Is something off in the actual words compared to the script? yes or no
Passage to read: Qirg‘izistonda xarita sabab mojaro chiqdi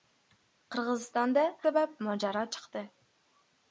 yes